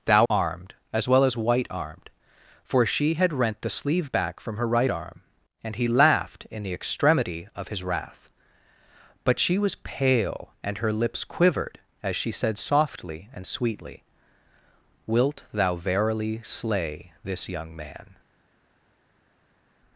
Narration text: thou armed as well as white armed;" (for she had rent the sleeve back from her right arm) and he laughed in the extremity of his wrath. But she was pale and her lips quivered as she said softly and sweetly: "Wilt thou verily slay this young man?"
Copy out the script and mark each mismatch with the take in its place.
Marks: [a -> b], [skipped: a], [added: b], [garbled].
thou armed as well as white armed;" (for she had rent the sleeve back from her right arm) and he laughed in the extremity of his wrath. But she was pale and her lips quivered as she said softly and sweetly: "Wilt thou verily slay this young man?"